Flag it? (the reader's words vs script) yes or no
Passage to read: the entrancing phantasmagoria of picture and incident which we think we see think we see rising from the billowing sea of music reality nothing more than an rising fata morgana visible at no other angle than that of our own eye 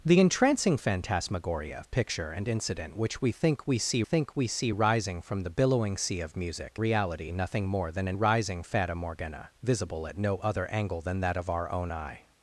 no